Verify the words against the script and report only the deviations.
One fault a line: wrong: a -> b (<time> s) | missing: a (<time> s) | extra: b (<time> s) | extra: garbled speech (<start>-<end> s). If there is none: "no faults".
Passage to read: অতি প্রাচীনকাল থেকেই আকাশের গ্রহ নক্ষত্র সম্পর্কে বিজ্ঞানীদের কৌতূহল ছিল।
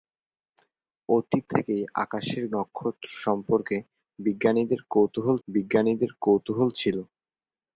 missing: প্রাচীনকাল (1.4 s)
missing: গ্রহ (2.4 s)
extra: বিজ্ঞানীদের কৌতূহল (5.5 s)